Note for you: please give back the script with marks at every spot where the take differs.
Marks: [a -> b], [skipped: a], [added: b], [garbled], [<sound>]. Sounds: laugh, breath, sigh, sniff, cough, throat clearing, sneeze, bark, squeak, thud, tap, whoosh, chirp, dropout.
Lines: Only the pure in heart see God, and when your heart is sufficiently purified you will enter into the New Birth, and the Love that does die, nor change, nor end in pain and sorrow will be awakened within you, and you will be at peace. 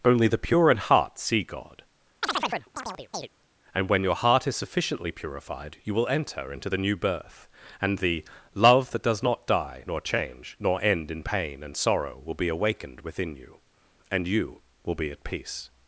Only the pure in heart see God, [chirp] and when your heart is sufficiently purified you will enter into the New Birth, and the Love that does [added: not] die, nor change, nor end in pain and sorrow will be awakened within you, and you will be at peace.